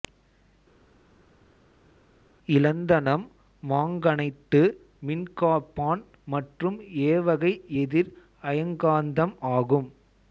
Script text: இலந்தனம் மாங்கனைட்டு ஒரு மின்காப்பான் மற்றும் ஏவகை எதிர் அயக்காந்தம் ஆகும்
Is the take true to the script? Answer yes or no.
no